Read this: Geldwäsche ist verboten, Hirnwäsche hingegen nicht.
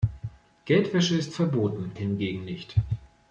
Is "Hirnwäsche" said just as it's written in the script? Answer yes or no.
no